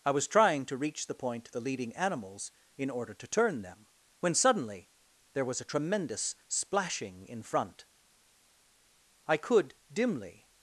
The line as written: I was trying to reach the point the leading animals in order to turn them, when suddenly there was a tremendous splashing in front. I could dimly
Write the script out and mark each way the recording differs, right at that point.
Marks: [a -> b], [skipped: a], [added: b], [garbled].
I was trying to reach the point the leading animals in order to turn them, when suddenly there was a tremendous splashing in front. I could dimly